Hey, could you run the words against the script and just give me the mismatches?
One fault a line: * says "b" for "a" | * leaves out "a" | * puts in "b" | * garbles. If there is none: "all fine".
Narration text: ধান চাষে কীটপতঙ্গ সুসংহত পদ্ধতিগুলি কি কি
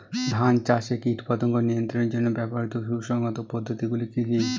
* puts in "নিয়ন্ত্রণের জন্য ব্যবহৃত"